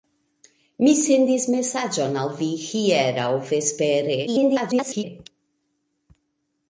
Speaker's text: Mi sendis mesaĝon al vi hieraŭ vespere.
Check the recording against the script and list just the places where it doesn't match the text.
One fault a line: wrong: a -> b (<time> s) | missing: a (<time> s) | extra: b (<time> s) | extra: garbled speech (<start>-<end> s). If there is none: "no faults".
extra: garbled speech (4.3-5.0 s)